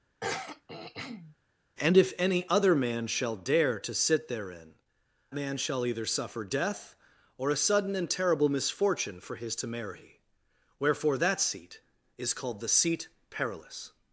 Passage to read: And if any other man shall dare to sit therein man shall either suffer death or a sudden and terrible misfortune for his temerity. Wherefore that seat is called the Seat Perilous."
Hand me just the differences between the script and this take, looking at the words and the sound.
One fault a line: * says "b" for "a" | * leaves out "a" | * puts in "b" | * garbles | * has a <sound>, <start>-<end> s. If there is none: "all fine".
* has a throat clearing, 0.2-1.4 s